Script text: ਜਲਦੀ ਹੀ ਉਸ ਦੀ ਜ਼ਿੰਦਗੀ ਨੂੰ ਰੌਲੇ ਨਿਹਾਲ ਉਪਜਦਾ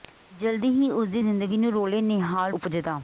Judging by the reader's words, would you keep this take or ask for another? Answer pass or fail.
pass